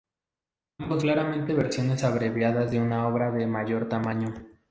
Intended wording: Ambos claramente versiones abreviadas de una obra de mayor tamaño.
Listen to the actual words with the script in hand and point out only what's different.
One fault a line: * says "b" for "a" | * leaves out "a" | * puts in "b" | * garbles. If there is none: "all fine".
all fine